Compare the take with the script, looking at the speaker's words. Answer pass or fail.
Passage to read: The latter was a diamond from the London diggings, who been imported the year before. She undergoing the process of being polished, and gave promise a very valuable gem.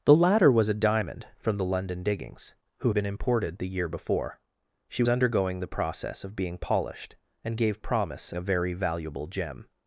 pass